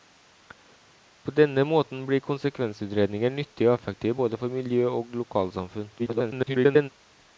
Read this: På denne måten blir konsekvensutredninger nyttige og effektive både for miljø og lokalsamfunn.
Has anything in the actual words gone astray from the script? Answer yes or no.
yes